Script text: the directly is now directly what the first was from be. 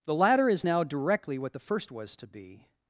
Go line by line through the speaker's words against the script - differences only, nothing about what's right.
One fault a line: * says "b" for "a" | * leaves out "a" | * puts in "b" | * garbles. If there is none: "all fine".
* says "latter" for "directly"
* says "to" for "from"